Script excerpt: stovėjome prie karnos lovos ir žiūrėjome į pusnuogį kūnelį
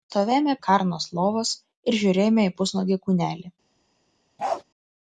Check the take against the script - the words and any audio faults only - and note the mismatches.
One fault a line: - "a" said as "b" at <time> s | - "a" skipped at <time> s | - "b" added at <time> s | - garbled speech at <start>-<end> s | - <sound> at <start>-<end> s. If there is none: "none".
- "prie" skipped at 0.5 s
- bark at 4.4-4.6 s